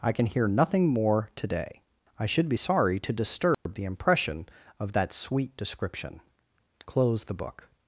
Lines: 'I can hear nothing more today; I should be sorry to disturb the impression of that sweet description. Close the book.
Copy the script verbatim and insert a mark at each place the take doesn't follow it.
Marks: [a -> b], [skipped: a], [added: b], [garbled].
'I can hear nothing more today; I should be sorry to disturb the impression of that sweet description. Close the book.